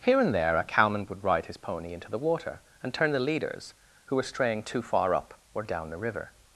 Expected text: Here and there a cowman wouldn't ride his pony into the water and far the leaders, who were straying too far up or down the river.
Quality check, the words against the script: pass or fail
fail